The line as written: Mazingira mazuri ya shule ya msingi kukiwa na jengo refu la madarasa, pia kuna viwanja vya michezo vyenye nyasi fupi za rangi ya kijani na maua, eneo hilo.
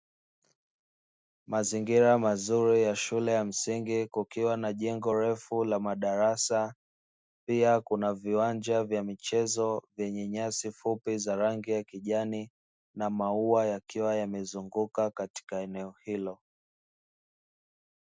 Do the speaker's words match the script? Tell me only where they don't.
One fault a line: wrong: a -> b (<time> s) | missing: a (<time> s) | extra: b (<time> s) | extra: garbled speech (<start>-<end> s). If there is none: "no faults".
extra: yakiwa yamezunguka katika (13.6 s)